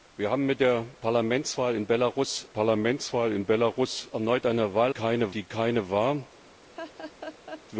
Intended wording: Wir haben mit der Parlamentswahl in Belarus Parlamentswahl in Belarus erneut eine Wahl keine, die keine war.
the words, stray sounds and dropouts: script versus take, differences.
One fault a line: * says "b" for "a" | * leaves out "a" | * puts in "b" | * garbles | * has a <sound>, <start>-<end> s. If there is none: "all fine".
* has a laugh, 6.7-7.6 s